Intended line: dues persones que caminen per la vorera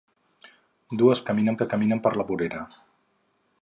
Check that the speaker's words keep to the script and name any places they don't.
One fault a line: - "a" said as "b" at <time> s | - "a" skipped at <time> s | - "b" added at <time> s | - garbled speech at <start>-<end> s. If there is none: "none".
- "persones" said as "caminen" at 1.3 s